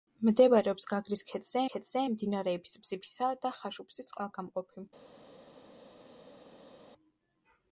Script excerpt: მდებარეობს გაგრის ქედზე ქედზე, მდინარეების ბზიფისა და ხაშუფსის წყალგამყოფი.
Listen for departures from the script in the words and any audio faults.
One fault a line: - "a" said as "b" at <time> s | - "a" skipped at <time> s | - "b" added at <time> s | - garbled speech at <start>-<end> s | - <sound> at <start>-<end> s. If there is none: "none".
none